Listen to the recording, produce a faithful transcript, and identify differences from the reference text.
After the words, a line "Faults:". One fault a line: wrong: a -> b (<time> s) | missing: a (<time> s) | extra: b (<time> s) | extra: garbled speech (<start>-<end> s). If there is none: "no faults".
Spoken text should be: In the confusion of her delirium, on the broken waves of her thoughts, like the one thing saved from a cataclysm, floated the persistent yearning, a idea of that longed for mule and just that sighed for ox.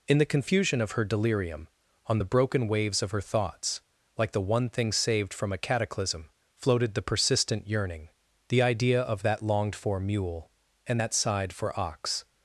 In the confusion of her delirium, on the broken waves of her thoughts, like the one thing saved from a cataclysm, floated the persistent yearning, the idea of that longed for mule and that sighed for ox.
Faults:
wrong: a -> the (8.5 s)
missing: just (11.0 s)